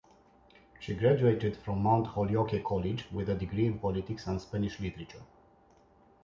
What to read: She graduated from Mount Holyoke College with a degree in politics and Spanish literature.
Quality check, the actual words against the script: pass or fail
pass